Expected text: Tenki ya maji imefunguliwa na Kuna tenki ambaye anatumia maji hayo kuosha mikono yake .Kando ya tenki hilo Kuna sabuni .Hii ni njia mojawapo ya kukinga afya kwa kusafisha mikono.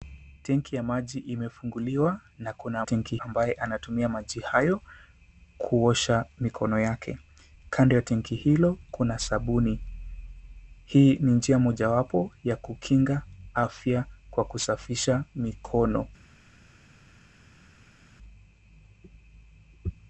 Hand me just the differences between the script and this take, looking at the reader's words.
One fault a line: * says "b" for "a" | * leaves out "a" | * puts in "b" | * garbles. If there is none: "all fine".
all fine